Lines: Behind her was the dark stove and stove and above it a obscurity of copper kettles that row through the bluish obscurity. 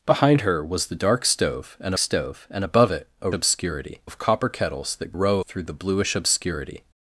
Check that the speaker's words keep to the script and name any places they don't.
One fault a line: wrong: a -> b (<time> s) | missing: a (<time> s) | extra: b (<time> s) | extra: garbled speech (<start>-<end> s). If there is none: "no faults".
no faults